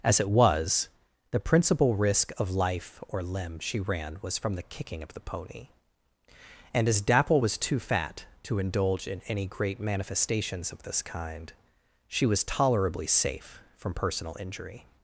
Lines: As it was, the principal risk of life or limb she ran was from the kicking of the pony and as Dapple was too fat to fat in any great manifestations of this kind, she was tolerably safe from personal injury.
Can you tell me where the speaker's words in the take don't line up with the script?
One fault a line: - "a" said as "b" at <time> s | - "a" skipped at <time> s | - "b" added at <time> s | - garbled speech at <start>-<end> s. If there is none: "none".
- "fat" said as "indulge" at 8.6 s